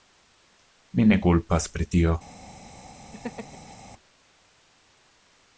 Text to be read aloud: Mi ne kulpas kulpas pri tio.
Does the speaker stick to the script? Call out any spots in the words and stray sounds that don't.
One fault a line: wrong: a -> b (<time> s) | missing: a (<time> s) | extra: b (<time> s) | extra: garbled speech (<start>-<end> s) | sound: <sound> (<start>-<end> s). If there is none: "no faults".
missing: kulpas (1.7 s)
sound: laugh (3.1-3.8 s)